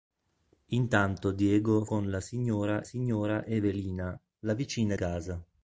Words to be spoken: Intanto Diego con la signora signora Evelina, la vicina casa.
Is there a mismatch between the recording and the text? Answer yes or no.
no